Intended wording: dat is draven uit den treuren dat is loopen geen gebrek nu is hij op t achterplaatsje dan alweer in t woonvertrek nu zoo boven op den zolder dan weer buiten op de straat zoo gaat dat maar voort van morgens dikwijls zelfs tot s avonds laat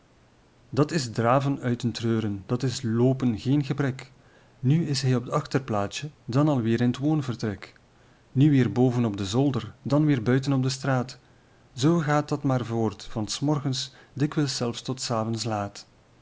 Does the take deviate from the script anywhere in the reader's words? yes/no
yes